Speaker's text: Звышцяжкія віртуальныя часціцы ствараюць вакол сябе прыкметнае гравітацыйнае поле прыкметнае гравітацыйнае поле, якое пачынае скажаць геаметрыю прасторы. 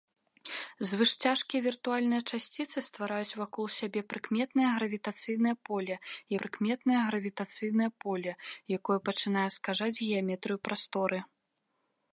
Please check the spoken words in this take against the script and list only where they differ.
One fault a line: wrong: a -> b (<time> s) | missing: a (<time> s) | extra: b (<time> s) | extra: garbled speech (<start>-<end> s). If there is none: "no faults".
no faults